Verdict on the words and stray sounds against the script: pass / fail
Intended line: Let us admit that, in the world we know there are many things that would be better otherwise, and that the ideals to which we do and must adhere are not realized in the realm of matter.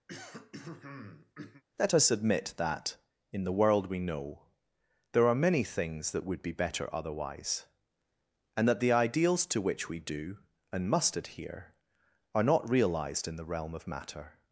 fail